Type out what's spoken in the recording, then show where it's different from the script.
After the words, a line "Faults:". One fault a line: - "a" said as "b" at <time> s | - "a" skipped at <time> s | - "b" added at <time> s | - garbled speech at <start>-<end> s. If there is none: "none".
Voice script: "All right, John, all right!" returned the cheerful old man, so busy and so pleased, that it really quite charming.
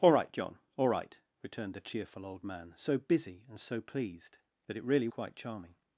"All right, John, all right!" returned the cheerful old man, so busy and so pleased, that it really quite charming.
Faults:
none